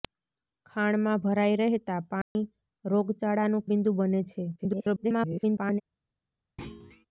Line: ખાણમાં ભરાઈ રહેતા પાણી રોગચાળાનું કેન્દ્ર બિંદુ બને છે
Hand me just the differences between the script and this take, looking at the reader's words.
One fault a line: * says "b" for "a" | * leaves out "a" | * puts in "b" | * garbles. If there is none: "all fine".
* leaves out "કેન્દ્ર"
* garbles